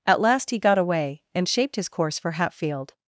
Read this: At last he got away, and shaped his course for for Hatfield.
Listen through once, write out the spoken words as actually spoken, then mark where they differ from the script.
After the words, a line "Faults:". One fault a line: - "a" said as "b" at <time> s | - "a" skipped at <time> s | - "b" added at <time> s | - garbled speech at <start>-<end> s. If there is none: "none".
At last he got away, and shaped his course for Hatfield.
Faults:
- "for" skipped at 2.3 s